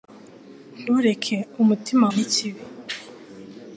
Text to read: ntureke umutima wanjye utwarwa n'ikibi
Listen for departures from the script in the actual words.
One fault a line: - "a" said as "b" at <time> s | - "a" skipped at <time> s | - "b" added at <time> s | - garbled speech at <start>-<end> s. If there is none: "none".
- "wanjye utwarwa" skipped at 2.1 s